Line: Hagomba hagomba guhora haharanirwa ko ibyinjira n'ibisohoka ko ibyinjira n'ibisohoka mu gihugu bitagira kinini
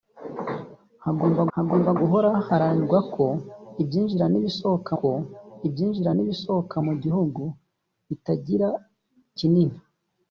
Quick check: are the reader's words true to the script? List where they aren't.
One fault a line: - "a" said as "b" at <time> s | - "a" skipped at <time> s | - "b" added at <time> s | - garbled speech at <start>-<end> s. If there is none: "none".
none